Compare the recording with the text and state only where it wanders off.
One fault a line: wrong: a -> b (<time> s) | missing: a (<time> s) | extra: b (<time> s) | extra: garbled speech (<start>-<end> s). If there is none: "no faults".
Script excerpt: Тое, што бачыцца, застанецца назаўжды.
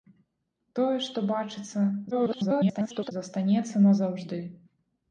extra: garbled speech (2.1-3.1 s)